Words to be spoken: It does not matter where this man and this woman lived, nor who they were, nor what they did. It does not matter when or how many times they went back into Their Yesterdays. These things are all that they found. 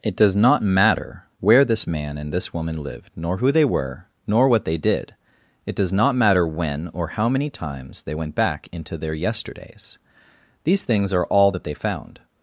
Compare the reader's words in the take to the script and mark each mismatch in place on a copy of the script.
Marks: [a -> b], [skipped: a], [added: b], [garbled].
It does not matter where this man and this woman lived, nor who they were, nor what they did. It does not matter when or how many times they went back into Their Yesterdays. These things are all that they found.